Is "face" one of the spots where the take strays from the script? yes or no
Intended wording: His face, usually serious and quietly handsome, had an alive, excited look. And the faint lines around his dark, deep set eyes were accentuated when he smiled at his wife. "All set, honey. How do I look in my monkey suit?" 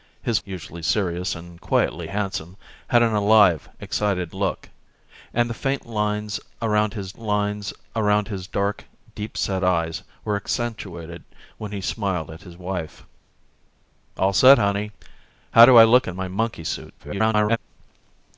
yes